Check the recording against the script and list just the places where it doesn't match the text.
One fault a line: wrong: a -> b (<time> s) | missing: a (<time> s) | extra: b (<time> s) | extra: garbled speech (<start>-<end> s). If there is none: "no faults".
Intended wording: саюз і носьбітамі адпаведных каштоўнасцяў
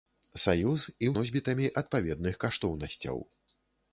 no faults